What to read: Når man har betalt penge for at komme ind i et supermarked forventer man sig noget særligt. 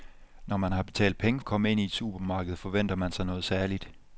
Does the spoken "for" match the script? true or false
false